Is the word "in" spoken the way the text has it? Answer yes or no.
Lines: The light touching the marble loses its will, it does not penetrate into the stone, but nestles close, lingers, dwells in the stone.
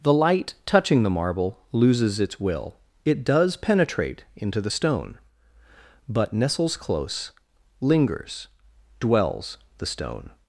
no